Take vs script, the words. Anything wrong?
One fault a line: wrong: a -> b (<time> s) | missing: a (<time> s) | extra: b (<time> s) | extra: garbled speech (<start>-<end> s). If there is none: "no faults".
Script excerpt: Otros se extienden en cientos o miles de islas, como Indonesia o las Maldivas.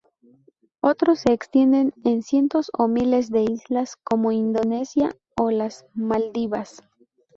no faults